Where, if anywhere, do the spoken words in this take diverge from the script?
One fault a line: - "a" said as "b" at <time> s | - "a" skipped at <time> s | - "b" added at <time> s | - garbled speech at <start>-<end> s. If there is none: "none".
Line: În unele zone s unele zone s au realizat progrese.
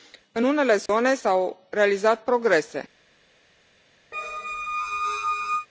- "unele zone s" skipped at 1.3 s